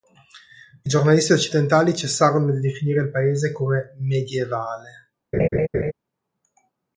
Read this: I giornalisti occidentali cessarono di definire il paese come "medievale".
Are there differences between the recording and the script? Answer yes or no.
no